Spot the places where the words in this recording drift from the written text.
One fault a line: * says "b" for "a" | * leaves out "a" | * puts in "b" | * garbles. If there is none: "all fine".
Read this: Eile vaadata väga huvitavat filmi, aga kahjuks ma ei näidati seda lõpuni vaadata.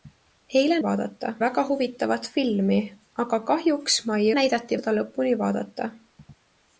all fine